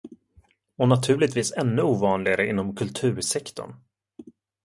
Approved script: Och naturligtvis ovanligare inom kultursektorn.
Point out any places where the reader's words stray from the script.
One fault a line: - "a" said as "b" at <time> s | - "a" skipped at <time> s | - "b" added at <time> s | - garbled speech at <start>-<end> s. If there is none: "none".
- "ännu" added at 1.5 s